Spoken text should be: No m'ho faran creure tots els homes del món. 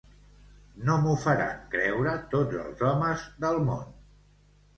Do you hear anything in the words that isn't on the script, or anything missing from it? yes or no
no